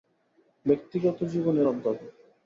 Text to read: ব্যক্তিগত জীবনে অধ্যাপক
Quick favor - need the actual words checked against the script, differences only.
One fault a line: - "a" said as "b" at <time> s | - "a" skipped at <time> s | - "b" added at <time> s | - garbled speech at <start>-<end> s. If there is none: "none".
none